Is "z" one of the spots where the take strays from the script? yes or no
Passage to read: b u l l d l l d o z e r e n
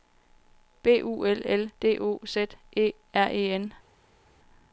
no